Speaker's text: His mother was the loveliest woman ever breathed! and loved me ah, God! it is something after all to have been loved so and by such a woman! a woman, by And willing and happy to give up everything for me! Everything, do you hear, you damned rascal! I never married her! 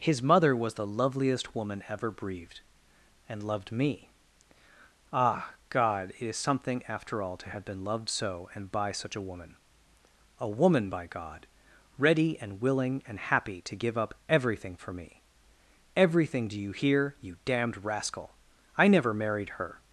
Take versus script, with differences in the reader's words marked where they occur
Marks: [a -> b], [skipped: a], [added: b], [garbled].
His mother was the loveliest woman ever breathed! and loved me ah, God! it is something after all to have been loved so and by such a woman! a woman, by [added: God ready] And willing and happy to give up everything for me! Everything, do you hear, you damned rascal! I never married her!